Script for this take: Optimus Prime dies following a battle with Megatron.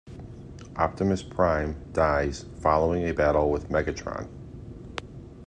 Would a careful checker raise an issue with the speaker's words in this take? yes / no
no